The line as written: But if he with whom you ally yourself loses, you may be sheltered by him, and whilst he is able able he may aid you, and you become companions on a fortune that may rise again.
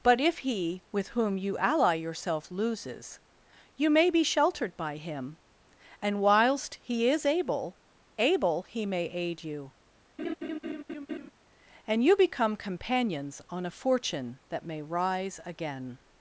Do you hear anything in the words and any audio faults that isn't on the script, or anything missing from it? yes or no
yes